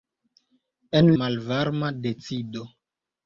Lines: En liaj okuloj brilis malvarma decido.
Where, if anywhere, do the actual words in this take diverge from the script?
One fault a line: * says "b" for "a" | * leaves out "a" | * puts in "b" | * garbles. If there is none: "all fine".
* leaves out "liaj okuloj brilis"